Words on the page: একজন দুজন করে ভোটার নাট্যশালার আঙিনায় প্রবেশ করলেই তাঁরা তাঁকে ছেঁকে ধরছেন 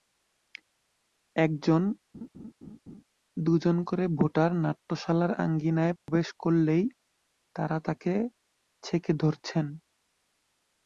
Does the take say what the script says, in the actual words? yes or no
yes